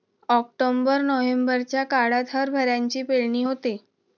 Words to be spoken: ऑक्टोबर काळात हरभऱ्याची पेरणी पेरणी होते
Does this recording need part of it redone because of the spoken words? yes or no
yes